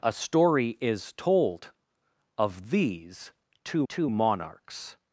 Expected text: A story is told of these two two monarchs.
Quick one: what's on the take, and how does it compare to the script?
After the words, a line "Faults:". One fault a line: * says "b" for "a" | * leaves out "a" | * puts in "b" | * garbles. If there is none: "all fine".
A story is told of these two two monarchs.
Faults:
all fine